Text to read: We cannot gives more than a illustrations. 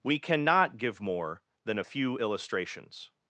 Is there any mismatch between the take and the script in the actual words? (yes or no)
yes